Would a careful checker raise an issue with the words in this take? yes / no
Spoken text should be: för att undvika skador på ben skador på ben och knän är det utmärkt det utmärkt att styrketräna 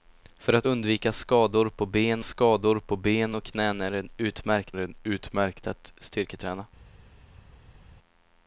no